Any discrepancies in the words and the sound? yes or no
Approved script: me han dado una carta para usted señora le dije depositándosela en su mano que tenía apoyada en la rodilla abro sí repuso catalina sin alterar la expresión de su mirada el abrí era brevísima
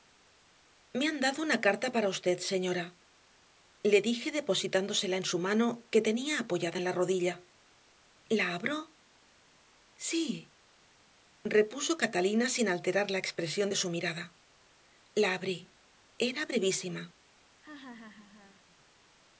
yes